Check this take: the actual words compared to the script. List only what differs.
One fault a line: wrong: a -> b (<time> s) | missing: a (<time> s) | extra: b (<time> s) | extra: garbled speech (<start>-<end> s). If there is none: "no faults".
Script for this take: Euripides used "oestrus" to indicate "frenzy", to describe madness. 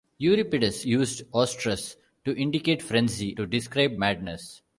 no faults